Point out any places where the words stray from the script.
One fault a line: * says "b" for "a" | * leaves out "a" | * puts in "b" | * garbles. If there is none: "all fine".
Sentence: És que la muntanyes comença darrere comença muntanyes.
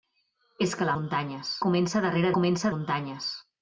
all fine